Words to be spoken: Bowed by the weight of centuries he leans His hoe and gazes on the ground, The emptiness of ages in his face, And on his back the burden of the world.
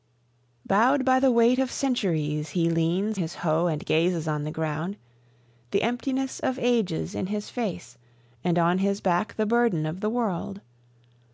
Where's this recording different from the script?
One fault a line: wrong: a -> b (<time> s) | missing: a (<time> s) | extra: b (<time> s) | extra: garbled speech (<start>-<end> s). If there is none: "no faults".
no faults